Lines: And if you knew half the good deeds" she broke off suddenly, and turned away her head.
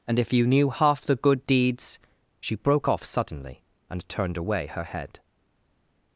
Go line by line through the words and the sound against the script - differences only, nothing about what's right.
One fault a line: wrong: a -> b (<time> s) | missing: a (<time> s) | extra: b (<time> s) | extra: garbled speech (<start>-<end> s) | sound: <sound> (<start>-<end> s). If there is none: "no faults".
no faults